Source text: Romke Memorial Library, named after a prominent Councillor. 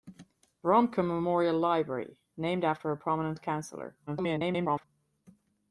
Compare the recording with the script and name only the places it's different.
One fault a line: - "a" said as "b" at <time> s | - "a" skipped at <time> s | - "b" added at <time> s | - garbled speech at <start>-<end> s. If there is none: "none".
- garbled speech at 4.1-4.8 s